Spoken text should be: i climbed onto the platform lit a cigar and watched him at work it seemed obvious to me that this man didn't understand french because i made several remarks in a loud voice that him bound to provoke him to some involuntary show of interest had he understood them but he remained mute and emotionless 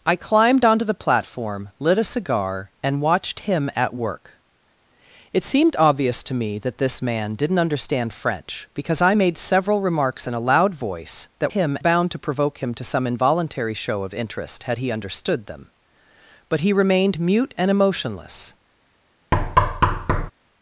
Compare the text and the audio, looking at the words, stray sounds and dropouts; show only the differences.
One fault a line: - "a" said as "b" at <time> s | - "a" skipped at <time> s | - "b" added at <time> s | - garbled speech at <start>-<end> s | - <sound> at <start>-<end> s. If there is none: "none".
- thud at 19.3-20.3 s